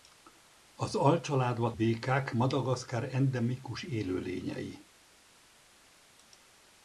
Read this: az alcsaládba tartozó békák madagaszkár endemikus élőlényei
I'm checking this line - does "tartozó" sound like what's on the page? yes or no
no